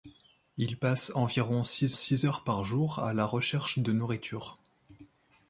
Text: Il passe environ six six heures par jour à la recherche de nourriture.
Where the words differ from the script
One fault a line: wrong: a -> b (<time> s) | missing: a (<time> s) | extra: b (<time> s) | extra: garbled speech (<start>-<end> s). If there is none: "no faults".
no faults